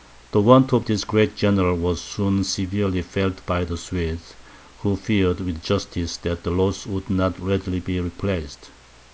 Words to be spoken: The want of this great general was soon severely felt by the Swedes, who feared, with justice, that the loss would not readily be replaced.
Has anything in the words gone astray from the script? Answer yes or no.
no